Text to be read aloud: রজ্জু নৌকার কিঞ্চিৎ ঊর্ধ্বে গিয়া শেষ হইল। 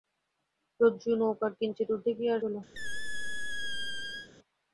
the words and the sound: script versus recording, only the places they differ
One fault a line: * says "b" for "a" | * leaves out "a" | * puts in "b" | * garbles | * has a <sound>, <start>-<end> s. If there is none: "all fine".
* leaves out "শেষ"
* has a squeak, 2.7-4.3 s